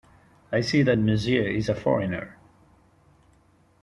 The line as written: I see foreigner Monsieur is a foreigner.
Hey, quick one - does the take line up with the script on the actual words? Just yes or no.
no